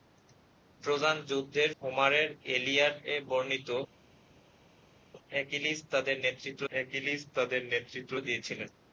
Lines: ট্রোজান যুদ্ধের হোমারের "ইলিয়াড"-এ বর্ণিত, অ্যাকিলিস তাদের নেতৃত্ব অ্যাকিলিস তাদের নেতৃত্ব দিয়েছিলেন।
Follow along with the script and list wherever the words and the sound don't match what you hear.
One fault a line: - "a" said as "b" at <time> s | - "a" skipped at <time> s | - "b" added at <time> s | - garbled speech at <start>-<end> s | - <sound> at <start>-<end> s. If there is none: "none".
none